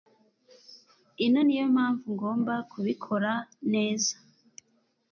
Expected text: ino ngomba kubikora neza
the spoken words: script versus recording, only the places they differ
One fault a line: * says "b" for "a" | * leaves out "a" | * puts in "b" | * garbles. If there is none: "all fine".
* puts in "niyo mpamvu"